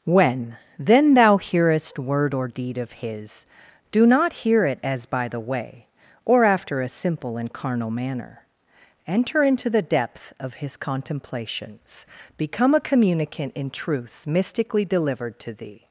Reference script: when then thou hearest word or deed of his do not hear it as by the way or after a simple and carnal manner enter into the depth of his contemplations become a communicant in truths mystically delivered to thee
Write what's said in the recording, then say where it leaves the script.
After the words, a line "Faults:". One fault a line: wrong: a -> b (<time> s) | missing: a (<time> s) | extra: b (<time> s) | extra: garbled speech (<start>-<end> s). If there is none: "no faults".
when then thou hearest word or deed of his do not hear it as by the way or after a simple and carnal manner enter into the depth of his contemplations become a communicant in truths mystically delivered to thee
Faults:
no faults